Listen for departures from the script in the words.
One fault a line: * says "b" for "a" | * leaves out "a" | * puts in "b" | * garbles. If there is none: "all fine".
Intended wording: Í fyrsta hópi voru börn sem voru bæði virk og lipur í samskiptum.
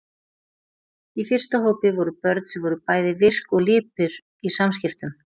all fine